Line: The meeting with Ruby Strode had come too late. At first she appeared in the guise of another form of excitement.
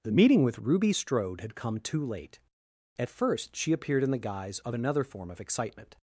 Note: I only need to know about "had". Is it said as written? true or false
true